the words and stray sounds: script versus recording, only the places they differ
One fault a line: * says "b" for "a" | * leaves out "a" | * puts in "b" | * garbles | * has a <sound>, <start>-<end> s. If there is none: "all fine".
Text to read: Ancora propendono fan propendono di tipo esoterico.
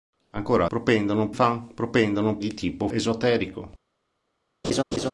* has a laugh, 4.6-5.1 s